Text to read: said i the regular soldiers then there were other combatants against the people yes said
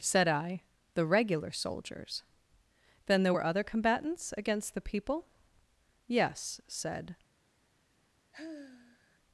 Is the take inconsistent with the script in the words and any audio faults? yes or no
yes